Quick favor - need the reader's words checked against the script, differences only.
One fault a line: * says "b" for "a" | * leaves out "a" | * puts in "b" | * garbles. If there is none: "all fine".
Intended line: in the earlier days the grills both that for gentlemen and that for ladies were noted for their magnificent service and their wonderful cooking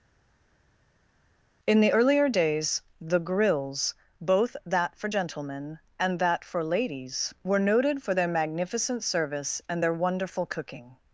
all fine